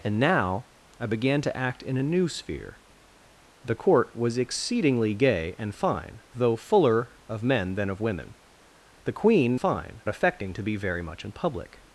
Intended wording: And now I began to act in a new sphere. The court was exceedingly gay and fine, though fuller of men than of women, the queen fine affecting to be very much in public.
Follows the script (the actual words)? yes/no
yes